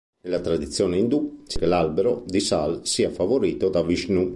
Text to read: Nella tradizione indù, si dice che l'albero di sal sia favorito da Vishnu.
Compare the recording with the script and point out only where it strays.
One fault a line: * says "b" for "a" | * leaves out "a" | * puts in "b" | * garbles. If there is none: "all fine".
* leaves out "dice"